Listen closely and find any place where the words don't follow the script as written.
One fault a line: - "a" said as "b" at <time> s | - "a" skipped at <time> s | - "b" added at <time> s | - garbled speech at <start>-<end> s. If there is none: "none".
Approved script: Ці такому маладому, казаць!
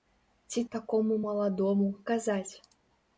none